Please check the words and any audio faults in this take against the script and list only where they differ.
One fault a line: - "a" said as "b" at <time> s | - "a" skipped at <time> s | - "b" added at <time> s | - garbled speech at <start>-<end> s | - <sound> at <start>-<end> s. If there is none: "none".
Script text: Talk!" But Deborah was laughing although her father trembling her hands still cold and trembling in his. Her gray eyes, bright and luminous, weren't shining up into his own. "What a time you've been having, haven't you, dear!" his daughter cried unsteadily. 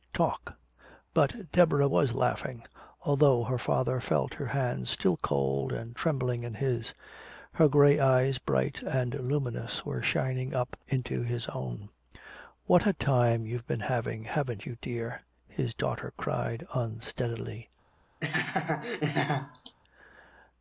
- "trembling" said as "felt" at 4.0 s
- "weren't" said as "were" at 9.9 s
- laugh at 18.2-19.8 s